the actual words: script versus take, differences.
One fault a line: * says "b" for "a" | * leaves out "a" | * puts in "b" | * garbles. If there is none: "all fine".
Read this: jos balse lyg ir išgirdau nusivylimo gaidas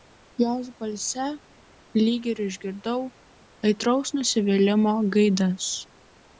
* puts in "aitraus"